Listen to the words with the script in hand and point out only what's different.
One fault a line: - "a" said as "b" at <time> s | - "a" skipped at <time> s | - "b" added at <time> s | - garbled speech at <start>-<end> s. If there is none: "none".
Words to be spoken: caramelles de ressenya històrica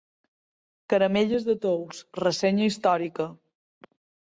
- "tous" added at 1.7 s